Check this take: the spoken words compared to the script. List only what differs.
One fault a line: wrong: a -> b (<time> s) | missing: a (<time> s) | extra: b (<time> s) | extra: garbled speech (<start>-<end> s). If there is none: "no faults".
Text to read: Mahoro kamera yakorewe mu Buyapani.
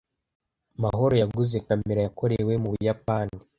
extra: yaguze (1.2 s)